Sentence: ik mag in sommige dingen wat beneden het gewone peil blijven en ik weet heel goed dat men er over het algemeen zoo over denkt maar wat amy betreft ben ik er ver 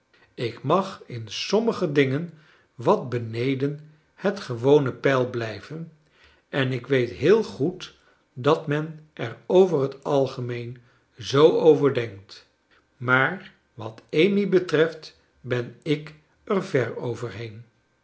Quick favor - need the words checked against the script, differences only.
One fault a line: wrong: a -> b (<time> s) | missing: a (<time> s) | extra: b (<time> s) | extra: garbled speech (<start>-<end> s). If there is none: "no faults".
no faults